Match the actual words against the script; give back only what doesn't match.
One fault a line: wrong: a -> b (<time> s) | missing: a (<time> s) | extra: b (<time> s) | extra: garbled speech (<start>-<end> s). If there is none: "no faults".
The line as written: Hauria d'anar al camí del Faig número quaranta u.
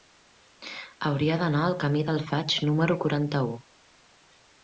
no faults